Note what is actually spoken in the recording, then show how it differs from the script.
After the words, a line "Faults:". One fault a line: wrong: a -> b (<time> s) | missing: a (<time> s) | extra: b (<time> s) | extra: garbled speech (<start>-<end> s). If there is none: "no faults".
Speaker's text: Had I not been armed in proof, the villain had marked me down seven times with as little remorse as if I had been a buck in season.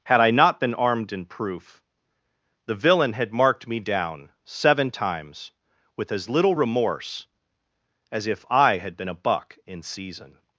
Had I not been armed in proof, the villain had marked me down seven times with as little remorse as if I had been a buck in season.
Faults:
no faults